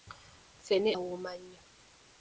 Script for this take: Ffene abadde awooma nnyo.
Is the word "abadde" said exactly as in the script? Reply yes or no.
no